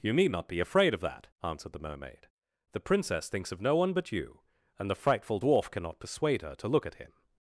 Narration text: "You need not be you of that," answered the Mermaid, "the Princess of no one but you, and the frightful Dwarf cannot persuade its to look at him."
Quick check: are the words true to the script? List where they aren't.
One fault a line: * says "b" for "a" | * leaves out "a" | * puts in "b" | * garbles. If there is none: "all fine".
* says "afraid" for "you"
* puts in "thinks"
* says "her" for "its"